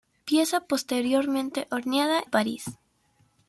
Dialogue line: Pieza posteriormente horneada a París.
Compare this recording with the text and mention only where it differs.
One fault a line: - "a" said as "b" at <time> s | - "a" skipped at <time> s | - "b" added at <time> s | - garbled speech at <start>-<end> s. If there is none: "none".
none